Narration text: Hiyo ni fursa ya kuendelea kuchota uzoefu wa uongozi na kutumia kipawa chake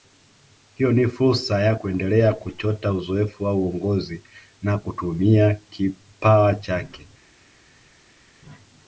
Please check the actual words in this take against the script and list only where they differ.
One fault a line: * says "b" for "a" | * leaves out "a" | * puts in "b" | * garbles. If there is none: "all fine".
all fine